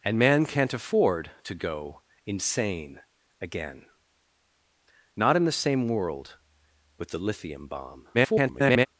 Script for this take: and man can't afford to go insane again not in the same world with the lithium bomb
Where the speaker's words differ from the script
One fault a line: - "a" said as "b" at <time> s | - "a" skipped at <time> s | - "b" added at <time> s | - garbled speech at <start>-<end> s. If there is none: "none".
- garbled speech at 8.1-8.9 s